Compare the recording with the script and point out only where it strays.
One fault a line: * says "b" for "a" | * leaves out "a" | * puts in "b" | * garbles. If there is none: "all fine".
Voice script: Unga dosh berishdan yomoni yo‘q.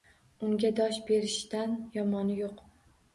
all fine